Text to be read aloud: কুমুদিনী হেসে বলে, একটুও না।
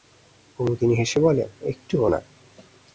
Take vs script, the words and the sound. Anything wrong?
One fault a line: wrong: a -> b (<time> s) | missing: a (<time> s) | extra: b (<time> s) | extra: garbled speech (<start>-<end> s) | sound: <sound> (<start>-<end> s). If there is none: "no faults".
no faults